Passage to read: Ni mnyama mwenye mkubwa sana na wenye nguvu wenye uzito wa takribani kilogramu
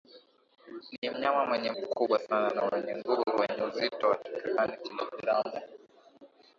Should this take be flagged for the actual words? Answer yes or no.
no